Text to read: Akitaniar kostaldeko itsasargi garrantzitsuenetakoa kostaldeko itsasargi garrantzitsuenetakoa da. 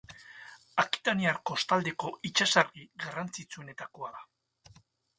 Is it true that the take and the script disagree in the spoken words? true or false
true